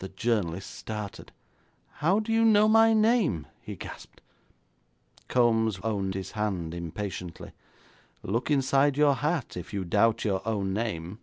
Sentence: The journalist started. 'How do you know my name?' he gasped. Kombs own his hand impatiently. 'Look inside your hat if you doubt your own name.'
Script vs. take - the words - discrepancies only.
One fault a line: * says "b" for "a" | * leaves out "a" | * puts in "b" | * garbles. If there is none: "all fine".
all fine